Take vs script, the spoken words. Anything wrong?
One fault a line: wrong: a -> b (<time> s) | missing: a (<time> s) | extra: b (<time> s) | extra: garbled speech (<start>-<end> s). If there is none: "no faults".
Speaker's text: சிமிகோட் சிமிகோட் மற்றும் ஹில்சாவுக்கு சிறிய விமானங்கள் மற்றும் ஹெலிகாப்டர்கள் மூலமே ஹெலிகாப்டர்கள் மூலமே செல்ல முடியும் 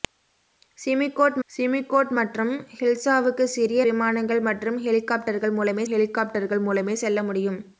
no faults